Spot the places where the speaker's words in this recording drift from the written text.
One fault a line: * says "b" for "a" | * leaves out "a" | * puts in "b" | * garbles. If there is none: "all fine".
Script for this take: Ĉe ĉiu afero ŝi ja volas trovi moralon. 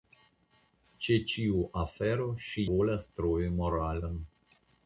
* leaves out "ja"